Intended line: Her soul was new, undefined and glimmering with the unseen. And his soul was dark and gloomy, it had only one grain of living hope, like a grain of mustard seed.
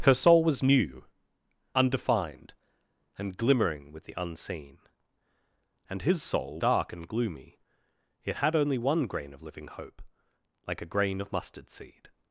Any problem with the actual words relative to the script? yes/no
yes